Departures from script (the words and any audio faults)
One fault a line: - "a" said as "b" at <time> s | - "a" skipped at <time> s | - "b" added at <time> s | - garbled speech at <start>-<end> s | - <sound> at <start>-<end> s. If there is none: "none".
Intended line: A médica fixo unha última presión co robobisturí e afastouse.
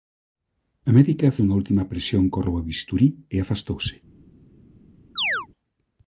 - "fixo" skipped at 1.4 s
- chirp at 5.2-5.5 s